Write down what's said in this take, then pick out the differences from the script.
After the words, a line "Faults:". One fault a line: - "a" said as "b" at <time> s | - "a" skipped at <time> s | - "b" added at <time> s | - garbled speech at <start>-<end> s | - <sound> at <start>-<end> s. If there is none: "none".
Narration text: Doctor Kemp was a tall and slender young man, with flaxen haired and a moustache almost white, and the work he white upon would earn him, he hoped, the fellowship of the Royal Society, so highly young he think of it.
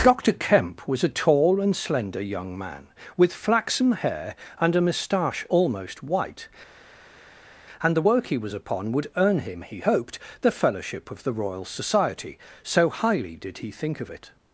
Doctor Kemp was a tall and slender young man, with flaxen hair and a moustache almost white, and the work he was upon would earn him, he hoped, the fellowship of the Royal Society, so highly did he think of it.
Faults:
- "haired" said as "hair" at 3.9 s
- "white" said as "was" at 8.4 s
- "young" said as "did" at 13.4 s